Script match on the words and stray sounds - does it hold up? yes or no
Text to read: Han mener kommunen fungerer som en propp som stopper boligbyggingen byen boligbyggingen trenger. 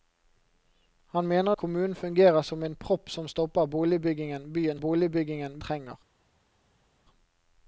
yes